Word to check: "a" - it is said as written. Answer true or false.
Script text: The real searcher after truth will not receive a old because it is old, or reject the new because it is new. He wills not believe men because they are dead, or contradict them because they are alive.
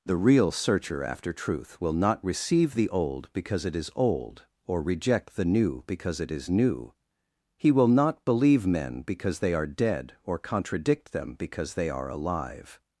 false